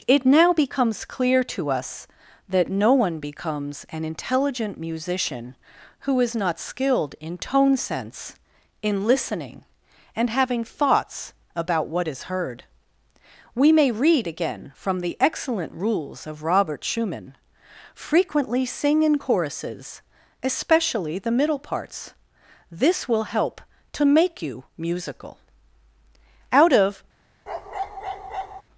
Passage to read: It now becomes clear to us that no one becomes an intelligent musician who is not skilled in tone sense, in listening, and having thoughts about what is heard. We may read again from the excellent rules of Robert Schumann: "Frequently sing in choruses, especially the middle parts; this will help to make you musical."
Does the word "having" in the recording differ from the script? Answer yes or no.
no